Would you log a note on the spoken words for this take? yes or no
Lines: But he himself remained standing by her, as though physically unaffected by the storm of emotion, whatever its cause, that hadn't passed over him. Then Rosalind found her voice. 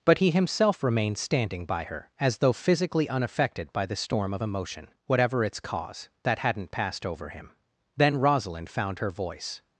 no